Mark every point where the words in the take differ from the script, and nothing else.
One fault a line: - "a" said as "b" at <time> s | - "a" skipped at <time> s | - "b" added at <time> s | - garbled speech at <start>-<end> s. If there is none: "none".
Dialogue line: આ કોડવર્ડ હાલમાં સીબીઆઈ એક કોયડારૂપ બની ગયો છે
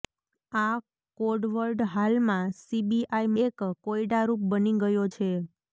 none